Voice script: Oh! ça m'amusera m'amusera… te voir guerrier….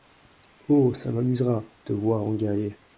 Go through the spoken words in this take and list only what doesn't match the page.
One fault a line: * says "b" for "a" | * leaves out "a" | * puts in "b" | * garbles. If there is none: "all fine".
* leaves out "m'amusera"
* puts in "en"